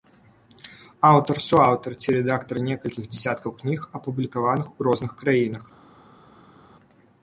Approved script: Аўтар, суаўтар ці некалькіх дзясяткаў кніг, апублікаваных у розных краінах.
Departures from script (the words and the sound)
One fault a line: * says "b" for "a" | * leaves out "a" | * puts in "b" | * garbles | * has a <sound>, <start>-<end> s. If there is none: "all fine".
* puts in "рэдактар"